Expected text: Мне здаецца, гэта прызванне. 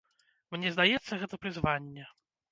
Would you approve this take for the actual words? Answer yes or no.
yes